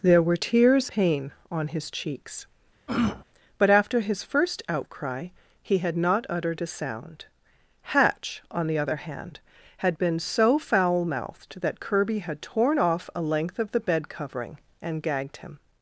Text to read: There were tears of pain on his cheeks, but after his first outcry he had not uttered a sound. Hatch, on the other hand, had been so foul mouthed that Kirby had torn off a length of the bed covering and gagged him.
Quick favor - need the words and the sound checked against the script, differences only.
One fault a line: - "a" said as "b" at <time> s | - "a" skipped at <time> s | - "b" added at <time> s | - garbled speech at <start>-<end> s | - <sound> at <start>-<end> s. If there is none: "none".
- "of" skipped at 0.9 s
- throat clearing at 2.9-3.2 s